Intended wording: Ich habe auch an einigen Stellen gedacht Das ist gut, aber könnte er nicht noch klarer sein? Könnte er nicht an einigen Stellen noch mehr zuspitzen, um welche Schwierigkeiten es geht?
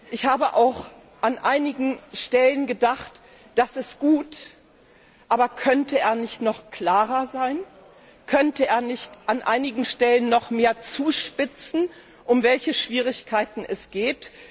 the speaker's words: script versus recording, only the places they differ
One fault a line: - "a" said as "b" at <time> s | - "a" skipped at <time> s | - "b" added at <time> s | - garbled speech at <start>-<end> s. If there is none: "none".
none